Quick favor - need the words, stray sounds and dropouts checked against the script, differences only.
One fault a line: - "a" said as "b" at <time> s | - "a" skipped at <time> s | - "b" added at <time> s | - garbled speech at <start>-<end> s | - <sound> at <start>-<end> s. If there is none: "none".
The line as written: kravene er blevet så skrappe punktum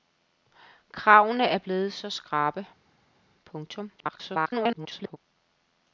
- garbled speech at 4.0-5.2 s